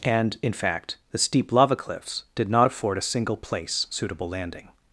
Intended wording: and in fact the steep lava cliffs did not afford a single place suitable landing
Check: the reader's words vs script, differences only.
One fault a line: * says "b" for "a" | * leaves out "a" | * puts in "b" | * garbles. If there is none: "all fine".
all fine